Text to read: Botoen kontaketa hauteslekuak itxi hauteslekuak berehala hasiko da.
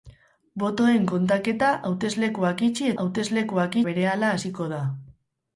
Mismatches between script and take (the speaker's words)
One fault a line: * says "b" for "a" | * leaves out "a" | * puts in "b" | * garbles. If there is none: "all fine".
all fine